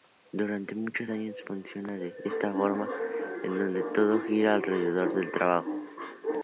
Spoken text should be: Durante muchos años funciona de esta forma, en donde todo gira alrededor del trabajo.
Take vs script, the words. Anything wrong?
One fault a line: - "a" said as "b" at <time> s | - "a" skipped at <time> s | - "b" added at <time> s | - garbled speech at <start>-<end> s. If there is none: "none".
none